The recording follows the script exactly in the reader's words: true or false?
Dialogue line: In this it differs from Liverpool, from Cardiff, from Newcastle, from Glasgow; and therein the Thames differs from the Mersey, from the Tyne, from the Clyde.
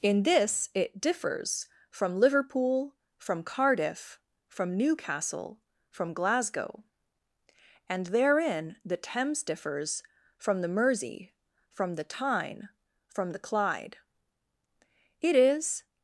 false